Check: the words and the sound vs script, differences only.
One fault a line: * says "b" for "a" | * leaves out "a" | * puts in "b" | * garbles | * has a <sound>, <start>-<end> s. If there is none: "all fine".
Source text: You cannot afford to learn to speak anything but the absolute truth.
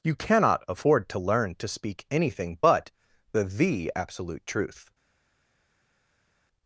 * puts in "the"